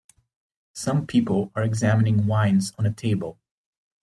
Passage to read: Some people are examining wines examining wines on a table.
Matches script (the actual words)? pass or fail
fail